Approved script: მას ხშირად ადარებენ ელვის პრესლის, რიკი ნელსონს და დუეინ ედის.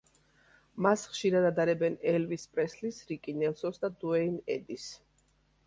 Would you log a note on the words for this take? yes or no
no